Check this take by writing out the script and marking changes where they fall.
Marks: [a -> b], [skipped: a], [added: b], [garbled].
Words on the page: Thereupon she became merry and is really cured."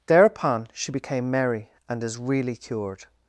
Thereupon she became merry and is really cured."